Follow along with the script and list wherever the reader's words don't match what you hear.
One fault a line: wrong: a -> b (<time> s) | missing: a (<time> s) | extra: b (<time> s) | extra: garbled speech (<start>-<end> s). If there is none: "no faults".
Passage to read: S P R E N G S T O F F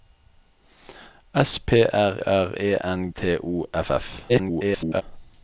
extra: R (2.2 s)
missing: G S (3.1 s)
extra: garbled speech (4.3-5.0 s)